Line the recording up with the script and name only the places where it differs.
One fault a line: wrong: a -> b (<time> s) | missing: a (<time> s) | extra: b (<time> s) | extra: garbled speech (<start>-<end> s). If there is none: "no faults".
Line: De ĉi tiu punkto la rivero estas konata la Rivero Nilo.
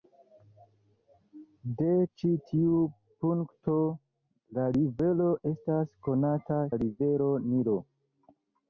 no faults